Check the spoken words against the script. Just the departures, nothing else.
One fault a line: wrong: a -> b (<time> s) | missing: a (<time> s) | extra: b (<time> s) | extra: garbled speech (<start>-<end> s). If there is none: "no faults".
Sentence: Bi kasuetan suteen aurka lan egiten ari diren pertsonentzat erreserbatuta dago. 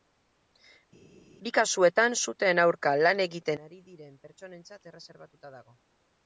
no faults